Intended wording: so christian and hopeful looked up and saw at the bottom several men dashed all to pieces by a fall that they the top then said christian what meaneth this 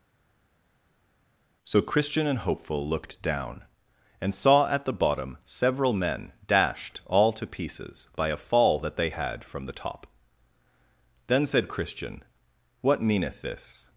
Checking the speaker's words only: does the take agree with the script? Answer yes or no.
no